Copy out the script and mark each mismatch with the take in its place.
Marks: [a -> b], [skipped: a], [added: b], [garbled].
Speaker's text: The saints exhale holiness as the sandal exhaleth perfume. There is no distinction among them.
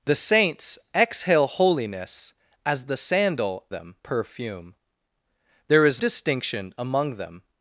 The saints exhale holiness as the sandal [exhaleth -> them] perfume. There is [skipped: no] distinction among them.